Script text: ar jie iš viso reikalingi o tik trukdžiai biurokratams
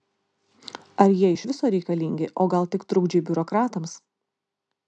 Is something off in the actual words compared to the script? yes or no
yes